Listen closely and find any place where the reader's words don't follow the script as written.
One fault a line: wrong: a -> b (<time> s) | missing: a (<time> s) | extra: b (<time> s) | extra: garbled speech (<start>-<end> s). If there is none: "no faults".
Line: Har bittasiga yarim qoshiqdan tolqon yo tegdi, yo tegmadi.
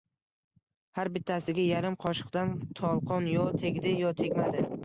no faults